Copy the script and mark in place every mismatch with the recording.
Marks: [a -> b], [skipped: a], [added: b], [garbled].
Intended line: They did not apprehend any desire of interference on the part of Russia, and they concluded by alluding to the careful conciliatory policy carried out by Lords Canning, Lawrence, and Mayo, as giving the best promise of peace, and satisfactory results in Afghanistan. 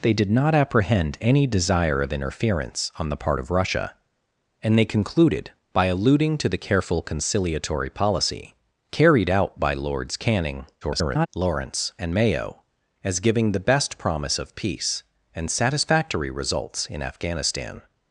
They did not apprehend any desire of interference on the part of Russia, and they concluded by alluding to the careful conciliatory policy carried out by Lords Canning, [garbled] Lawrence, and Mayo, as giving the best promise of peace, and satisfactory results in Afghanistan.